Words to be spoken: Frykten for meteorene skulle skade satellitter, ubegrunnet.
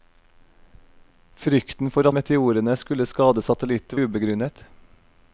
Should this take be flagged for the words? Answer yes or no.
no